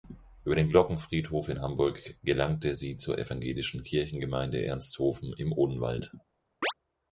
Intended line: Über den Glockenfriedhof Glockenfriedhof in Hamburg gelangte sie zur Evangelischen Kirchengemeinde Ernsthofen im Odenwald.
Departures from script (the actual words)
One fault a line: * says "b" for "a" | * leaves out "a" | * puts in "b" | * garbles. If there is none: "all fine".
* leaves out "Glockenfriedhof"